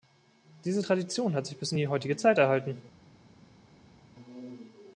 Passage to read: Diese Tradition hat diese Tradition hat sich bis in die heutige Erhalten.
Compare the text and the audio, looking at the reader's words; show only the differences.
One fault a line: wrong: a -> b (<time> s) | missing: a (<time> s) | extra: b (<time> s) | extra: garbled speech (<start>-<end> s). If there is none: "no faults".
missing: diese Tradition hat (1.5 s)
extra: Zeit (2.2 s)